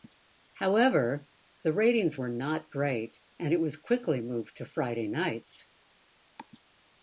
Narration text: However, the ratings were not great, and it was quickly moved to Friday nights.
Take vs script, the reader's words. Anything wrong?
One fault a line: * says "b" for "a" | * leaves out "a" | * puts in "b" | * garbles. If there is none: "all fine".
all fine